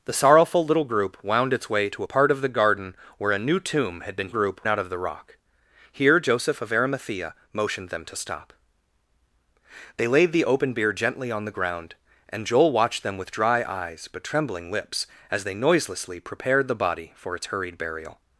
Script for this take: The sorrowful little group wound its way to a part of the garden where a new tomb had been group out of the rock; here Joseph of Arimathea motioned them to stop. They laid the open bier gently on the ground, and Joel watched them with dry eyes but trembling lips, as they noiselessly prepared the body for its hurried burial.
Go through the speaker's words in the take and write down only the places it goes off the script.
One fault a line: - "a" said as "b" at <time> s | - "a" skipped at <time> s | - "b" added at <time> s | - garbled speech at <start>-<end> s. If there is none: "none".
none